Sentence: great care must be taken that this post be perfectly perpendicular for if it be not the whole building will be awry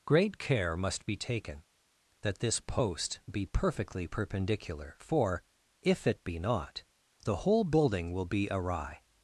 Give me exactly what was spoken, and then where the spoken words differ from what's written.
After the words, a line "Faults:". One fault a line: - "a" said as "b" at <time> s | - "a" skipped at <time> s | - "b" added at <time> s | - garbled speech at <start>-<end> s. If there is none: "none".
great care must be taken that this post be perfectly perpendicular for if it be not the whole building will be awry
Faults:
none